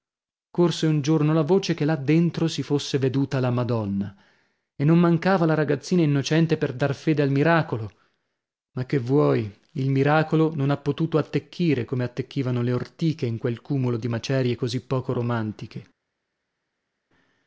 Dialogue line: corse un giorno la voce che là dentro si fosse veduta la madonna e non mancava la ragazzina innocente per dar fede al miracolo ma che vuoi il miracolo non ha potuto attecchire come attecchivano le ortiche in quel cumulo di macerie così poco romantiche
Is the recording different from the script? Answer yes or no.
no